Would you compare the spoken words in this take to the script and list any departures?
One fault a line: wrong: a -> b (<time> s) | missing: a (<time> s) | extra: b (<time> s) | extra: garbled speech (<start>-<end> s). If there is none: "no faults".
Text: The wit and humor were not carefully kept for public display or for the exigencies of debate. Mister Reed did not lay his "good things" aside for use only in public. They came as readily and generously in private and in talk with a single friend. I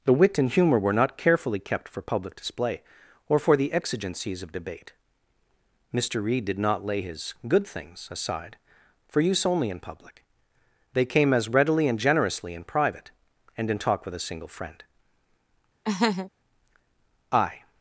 no faults